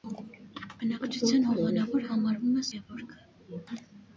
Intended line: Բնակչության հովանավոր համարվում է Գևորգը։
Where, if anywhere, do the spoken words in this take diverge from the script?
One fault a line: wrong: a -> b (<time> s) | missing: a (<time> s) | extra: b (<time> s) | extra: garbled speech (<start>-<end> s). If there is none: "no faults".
no faults